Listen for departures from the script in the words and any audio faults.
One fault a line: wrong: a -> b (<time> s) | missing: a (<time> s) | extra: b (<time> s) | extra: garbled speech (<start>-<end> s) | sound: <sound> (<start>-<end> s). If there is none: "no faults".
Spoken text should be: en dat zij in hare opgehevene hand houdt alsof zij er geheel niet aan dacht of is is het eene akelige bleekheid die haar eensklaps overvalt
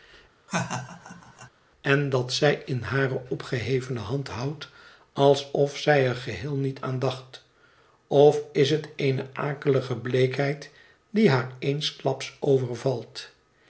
sound: laugh (0.5-1.5 s)
missing: is (8.7 s)